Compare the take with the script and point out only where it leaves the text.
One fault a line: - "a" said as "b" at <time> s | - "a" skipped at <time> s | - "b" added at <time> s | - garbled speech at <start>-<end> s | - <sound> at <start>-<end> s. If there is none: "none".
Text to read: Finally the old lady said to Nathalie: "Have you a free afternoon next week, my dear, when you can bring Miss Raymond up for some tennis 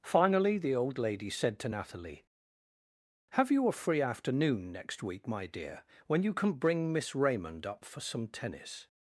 none